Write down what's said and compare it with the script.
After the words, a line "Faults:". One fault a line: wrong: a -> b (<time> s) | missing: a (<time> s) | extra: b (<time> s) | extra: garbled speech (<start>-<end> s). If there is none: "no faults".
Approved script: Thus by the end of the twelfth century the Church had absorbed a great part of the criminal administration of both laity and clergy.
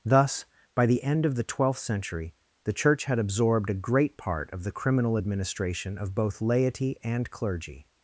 Thus by the end of the twelfth century the Church had absorbed a great part of the criminal administration of both laity and clergy.
Faults:
no faults